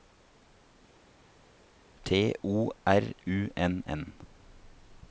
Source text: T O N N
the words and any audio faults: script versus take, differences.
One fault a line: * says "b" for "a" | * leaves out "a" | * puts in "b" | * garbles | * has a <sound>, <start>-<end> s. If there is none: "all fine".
* puts in "R U"